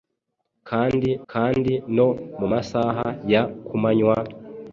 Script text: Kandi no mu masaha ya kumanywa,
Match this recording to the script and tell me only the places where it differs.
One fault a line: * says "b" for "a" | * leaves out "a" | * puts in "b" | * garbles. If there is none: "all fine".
* puts in "kandi"